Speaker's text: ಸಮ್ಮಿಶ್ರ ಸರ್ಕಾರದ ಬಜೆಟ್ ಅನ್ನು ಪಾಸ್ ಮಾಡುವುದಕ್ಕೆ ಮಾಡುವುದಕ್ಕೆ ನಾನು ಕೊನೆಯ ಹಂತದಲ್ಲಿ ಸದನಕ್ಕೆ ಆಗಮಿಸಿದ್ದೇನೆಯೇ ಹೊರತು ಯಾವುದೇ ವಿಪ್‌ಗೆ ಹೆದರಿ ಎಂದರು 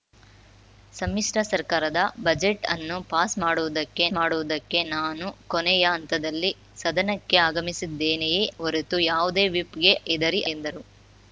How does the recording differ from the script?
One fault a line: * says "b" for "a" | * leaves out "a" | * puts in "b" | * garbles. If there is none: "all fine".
all fine